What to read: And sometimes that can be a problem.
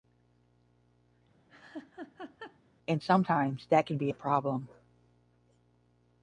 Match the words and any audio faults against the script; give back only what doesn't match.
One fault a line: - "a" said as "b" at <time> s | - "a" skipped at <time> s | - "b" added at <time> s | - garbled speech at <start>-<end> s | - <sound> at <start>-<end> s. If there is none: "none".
- laugh at 1.5-2.6 s